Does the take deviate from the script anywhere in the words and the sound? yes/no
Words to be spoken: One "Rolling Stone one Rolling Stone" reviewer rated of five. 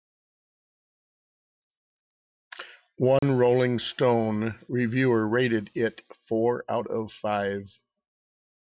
yes